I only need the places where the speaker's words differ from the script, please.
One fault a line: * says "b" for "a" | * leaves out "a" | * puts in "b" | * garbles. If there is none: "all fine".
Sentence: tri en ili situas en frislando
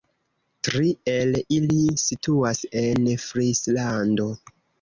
* says "el" for "en"